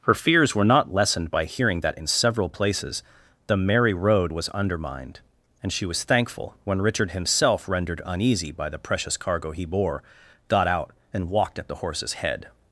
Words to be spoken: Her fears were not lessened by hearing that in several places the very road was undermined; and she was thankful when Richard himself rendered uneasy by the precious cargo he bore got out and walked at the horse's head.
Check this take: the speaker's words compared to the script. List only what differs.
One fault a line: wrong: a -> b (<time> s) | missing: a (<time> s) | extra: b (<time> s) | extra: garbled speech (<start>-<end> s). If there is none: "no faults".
wrong: very -> merry (3.6 s)